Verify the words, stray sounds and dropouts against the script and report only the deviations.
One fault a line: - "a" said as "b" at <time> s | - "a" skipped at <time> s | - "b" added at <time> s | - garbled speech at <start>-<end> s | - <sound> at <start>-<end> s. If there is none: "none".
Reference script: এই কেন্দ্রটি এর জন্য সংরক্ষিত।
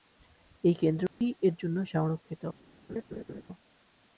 - dropout at 1.1-1.2 s
- laugh at 2.9-3.4 s